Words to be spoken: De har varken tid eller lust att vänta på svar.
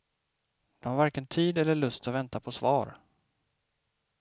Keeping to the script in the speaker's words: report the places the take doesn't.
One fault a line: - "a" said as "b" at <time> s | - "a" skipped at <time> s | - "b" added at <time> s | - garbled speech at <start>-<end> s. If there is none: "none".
none